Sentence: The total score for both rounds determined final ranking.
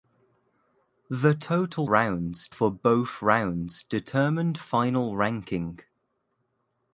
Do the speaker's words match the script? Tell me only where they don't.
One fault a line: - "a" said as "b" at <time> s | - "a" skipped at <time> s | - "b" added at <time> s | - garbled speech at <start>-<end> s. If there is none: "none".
- "score" said as "rounds" at 1.9 s